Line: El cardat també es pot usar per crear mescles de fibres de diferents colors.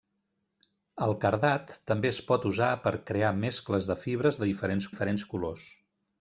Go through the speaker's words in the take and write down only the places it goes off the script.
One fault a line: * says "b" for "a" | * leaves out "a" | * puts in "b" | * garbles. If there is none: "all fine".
* puts in "diferents"